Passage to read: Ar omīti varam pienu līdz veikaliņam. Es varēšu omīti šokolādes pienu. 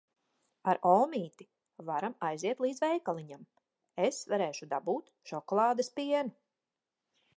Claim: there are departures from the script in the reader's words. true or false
true